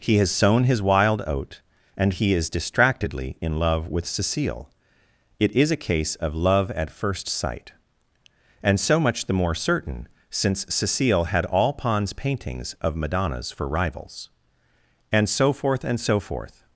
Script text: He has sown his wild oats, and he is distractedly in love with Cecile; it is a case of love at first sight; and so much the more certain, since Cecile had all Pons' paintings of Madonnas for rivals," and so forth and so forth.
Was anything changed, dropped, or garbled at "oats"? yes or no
yes